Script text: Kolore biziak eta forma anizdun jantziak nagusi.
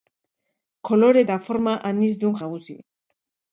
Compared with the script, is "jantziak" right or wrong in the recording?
wrong